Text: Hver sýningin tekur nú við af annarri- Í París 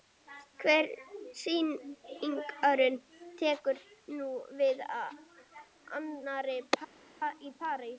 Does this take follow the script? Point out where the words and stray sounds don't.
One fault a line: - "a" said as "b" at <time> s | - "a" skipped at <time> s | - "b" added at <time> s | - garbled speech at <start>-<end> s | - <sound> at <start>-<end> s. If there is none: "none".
none